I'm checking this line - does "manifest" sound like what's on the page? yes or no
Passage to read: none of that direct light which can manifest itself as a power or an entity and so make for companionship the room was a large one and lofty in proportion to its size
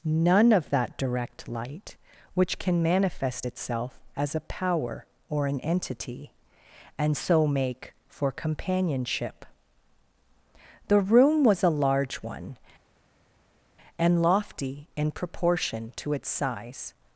yes